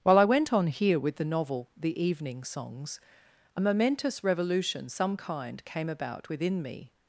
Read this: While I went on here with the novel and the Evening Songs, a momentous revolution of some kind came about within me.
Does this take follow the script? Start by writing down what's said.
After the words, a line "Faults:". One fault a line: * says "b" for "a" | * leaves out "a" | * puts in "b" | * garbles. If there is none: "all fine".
While I went on here with the novel the Evening Songs, a momentous revolution some kind came about within me.
Faults:
* leaves out "and"
* leaves out "of"